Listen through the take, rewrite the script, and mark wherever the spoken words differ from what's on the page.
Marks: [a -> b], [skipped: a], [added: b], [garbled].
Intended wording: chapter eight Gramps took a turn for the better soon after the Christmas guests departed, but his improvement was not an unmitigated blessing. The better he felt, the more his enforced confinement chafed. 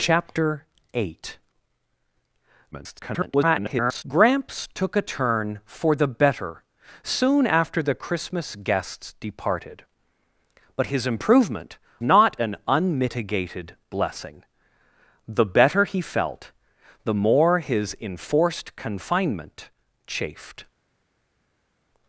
chapter eight [garbled] Gramps took a turn for the better soon after the Christmas guests departed, but his improvement [skipped: was] not an unmitigated blessing. The better he felt, the more his enforced confinement chafed.